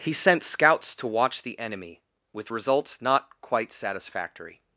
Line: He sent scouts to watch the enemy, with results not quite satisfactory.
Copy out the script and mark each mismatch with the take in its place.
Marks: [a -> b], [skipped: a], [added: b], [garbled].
He sent scouts to watch the enemy, with results not quite satisfactory.